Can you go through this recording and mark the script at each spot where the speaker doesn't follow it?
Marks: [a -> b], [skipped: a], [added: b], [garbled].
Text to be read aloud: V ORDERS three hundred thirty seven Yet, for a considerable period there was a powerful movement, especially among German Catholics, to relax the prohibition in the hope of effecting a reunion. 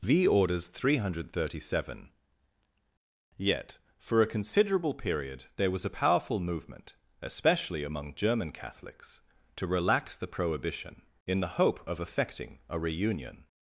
V ORDERS three hundred thirty seven Yet, for a considerable period there was a powerful movement, especially among German Catholics, to relax the prohibition in the hope of effecting a reunion.